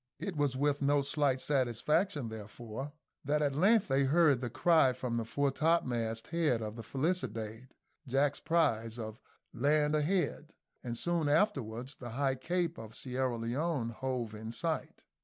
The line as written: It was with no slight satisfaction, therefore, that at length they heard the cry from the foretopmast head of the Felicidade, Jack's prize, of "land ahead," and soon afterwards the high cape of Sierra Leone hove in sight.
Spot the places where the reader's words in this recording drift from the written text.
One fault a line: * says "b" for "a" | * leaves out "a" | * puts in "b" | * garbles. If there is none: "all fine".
all fine